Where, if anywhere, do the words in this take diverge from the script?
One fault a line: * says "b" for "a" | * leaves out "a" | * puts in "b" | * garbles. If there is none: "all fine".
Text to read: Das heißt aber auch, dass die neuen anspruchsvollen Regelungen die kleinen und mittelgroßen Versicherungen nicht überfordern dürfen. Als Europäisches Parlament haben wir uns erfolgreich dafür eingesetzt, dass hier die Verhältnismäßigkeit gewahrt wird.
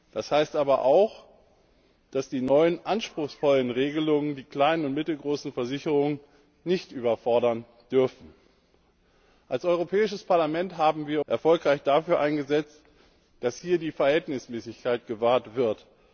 * leaves out "uns"